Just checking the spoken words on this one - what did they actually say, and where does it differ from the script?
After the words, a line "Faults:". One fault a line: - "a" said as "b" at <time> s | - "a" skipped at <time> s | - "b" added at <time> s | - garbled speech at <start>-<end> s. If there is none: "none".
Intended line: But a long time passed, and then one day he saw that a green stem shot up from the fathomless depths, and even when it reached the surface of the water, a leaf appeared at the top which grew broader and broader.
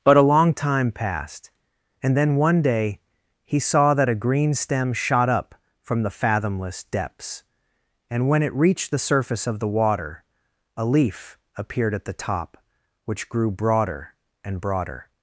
But a long time passed, and then one day he saw that a green stem shot up from the fathomless depths, and when it reached the surface of the water, a leaf appeared at the top which grew broader and broader.
Faults:
- "even" skipped at 8.3 s